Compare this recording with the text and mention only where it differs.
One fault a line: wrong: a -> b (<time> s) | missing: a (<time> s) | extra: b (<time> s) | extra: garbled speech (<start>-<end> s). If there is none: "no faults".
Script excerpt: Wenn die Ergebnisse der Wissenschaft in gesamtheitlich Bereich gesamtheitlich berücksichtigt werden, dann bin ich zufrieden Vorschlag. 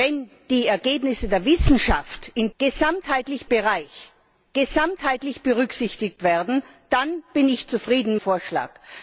no faults